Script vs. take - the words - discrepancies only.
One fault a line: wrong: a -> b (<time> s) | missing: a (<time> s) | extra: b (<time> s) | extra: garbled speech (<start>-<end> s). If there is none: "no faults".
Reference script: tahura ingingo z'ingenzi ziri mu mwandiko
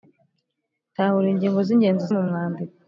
missing: ziri (2.0 s)